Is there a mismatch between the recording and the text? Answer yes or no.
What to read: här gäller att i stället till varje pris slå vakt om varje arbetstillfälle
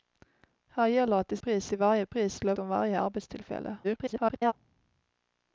yes